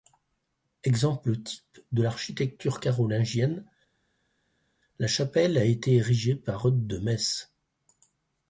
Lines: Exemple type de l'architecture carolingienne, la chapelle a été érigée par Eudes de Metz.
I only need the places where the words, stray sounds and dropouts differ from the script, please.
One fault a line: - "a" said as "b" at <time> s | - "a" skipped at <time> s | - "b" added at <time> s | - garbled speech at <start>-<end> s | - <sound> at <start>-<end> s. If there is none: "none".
none